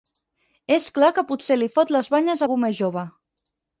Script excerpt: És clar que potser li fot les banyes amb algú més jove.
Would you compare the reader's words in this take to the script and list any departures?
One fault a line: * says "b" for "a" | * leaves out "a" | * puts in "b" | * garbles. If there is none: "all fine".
* leaves out "amb"